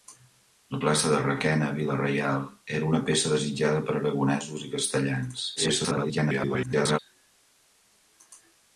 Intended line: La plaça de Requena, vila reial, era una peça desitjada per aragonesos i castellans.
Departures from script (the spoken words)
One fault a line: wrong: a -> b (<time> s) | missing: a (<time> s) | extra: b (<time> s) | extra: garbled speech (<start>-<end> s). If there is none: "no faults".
extra: garbled speech (5.6-7.0 s)